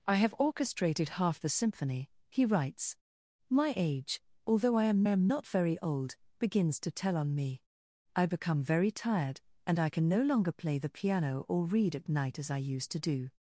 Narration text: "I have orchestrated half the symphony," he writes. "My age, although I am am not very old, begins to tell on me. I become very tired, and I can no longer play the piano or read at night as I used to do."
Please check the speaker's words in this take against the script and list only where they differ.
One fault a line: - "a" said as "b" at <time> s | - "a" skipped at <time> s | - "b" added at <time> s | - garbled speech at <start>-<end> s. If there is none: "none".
none